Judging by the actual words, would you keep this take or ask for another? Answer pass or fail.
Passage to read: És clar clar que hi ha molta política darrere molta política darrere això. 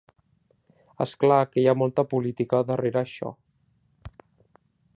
fail